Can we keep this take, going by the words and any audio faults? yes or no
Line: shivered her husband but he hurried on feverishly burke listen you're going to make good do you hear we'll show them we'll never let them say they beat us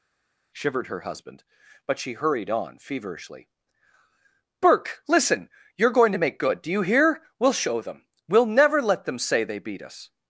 no